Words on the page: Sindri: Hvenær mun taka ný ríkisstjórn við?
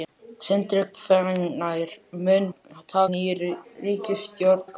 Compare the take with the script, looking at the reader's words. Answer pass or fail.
pass